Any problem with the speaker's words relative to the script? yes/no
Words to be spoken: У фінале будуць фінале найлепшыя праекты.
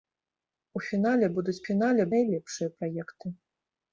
no